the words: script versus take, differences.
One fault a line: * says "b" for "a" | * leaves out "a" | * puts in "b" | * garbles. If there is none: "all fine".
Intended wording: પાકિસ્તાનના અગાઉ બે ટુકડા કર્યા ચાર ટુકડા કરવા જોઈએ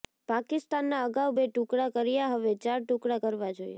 * puts in "હવે"